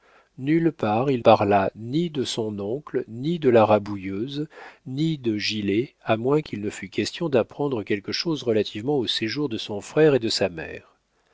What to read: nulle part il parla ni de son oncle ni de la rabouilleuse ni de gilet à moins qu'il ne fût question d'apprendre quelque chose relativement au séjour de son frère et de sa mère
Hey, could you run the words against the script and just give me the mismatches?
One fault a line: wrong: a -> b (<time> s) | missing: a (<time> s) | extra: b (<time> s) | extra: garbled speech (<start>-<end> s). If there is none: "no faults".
no faults